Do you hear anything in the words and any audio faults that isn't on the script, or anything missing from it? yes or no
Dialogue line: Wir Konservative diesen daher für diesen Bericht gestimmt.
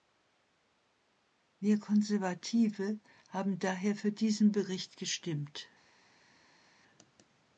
yes